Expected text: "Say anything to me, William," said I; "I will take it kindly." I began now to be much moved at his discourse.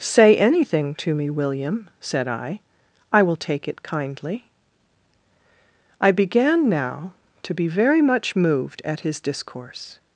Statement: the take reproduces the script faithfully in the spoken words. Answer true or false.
false